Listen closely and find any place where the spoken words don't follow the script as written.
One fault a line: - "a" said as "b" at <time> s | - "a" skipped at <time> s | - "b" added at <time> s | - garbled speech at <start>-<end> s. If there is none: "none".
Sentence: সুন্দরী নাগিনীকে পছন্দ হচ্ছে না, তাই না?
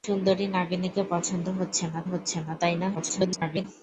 - "হচ্ছে না" added at 2.1 s
- garbled speech at 2.9-3.6 s